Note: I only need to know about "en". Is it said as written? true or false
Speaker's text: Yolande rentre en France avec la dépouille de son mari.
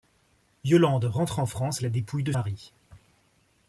true